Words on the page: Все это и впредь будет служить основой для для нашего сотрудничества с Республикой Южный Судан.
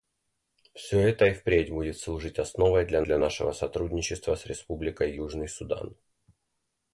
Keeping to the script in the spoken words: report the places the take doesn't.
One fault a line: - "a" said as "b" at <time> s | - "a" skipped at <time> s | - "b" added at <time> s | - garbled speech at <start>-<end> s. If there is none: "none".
none